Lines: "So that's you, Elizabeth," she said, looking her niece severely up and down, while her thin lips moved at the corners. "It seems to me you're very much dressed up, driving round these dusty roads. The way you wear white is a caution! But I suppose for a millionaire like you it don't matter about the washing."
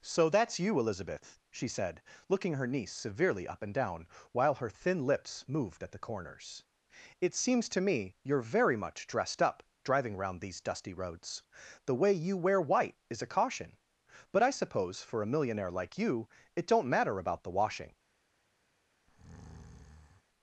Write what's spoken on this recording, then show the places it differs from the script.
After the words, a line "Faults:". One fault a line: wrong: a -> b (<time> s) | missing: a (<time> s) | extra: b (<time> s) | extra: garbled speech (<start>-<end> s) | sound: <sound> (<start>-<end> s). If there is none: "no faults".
"So that's you, Elizabeth," she said, looking her niece severely up and down, while her thin lips moved at the corners. "It seems to me you're very much dressed up, driving round these dusty roads. The way you wear white is a caution! But I suppose for a millionaire like you it don't matter about the washing."
Faults:
sound: breath (19.1-20.2 s)